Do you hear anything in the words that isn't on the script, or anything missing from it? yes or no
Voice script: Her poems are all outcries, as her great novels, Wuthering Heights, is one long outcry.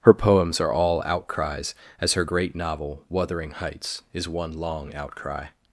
yes